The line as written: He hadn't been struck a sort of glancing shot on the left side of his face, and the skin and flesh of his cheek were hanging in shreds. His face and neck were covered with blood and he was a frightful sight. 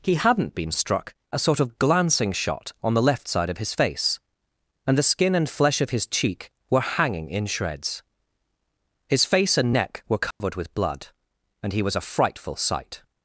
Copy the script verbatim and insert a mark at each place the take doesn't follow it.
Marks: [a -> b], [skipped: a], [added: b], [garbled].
He hadn't been struck a sort of glancing shot on the left side of his face, and the skin and flesh of his cheek were hanging in shreds. His face and neck were covered with blood and he was a frightful sight.